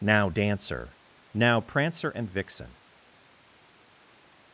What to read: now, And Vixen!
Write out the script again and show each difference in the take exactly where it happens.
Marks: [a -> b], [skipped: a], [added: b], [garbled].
now, [added: Dancer now Prancer] And Vixen!